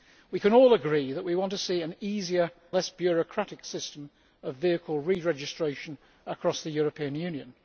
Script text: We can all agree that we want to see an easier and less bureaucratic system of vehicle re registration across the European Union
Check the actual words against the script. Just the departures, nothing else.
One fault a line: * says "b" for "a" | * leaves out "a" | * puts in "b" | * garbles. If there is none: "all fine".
* leaves out "and"